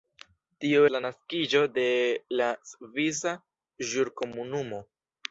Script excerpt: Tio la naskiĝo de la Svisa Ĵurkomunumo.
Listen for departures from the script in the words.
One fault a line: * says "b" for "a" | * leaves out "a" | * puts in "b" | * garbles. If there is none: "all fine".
all fine